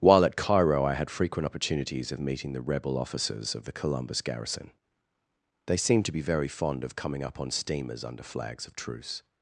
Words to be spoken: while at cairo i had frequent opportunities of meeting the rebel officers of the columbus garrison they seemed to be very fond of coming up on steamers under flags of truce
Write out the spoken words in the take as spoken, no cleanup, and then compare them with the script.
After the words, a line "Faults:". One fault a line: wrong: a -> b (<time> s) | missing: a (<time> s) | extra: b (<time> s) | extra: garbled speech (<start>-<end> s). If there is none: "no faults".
while at cairo i had frequent opportunities of meeting the rebel officers of the columbus garrison they seemed to be very fond of coming up on steamers under flags of truce
Faults:
no faults